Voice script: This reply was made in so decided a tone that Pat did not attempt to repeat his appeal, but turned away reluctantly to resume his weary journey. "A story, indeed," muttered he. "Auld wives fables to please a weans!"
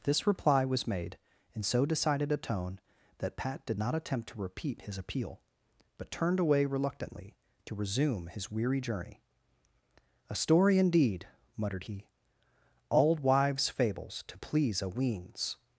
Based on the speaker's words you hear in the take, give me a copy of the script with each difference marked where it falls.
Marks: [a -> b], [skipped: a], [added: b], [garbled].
This reply was made in so decided a tone that Pat did not attempt to repeat his appeal, but turned away reluctantly to resume his weary journey. "A story, indeed," muttered he. "Auld wives fables to please a weans!"